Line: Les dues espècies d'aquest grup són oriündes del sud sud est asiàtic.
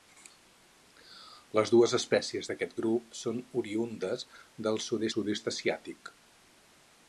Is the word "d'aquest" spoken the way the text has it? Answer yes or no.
yes